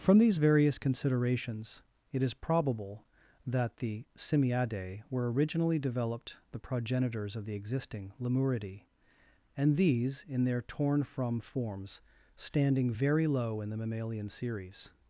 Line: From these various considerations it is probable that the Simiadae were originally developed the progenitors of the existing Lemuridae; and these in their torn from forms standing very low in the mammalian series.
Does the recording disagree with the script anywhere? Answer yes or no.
no